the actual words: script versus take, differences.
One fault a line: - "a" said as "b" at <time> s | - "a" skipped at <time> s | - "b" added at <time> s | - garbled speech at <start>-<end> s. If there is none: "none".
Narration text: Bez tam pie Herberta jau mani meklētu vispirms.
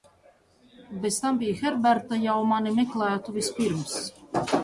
none